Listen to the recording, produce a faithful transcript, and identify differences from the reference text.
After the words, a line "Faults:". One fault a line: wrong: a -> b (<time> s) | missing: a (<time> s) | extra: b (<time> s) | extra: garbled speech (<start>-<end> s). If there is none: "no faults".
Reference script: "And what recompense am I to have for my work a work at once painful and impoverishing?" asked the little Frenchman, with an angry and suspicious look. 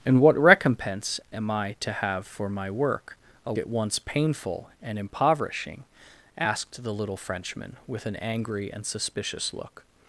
"And what recompense am I to have for my work a at once painful and impoverishing?" asked the little Frenchman, with an angry and suspicious look.
Faults:
missing: work (3.5 s)